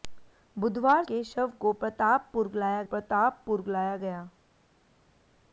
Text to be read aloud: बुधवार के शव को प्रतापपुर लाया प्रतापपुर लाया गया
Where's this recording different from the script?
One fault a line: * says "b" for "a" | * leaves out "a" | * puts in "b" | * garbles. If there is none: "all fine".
all fine